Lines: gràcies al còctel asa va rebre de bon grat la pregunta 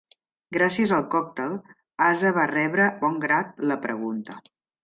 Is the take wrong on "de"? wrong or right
wrong